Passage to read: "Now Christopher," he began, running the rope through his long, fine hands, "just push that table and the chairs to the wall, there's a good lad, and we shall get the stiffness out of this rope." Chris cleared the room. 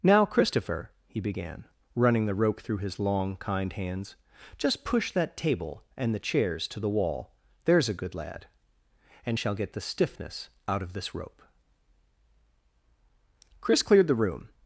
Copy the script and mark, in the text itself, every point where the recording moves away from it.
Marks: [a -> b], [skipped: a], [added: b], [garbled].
"Now Christopher," he began, running the rope through his long, [fine -> kind] hands, "just push that table and the chairs to the wall, there's a good lad, and [skipped: we] shall get the stiffness out of this rope." Chris cleared the room.